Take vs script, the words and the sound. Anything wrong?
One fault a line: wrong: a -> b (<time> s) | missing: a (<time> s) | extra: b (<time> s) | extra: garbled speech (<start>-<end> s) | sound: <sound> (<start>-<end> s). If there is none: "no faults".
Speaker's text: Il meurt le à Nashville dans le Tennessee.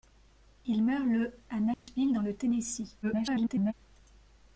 sound: dropout (1.7-1.9 s)
extra: garbled speech (3.0-3.7 s)